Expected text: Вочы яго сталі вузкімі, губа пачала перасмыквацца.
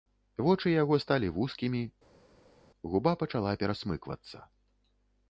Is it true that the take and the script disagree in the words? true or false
false